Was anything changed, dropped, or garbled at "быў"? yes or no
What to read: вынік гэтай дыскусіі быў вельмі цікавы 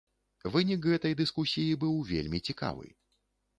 no